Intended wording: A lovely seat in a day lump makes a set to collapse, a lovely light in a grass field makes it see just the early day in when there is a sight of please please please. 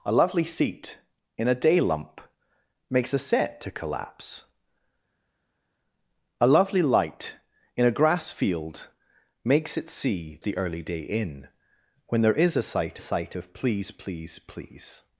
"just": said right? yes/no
no